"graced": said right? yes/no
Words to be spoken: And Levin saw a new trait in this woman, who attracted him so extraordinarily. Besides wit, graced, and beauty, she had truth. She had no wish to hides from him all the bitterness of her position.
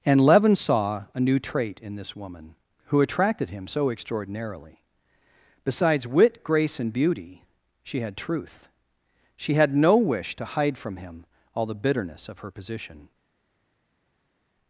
no